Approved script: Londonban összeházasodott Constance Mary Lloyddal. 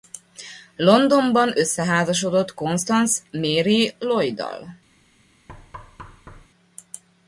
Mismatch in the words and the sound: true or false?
true